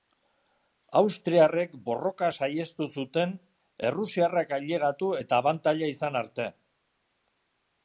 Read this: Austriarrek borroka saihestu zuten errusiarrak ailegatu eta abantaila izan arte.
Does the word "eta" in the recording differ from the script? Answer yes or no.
no